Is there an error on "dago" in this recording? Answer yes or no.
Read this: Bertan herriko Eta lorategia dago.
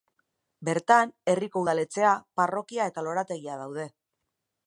yes